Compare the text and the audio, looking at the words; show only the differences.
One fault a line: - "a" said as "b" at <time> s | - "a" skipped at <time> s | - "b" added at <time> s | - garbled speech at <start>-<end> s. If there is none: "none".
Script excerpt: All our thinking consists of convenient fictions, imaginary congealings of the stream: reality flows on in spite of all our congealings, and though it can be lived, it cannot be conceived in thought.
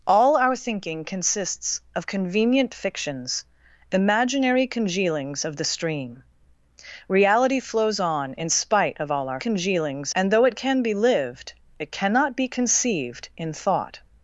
none